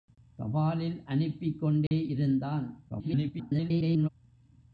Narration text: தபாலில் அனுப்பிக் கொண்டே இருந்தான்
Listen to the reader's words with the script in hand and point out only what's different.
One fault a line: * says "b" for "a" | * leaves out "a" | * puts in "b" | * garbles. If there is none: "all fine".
* garbles